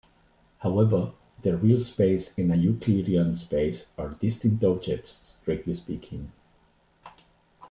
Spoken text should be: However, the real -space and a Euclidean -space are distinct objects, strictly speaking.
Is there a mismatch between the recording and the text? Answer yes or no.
no